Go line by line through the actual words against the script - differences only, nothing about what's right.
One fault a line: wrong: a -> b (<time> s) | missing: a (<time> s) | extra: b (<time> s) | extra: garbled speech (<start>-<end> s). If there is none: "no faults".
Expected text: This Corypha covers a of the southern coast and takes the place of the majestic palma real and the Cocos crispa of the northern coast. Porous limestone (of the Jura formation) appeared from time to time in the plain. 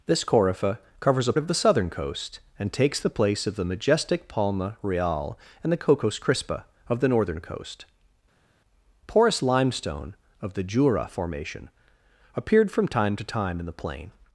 no faults